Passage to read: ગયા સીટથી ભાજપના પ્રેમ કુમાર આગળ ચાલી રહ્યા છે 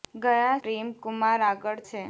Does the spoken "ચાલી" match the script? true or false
false